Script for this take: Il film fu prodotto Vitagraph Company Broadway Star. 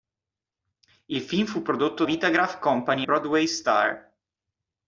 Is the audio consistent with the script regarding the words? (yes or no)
yes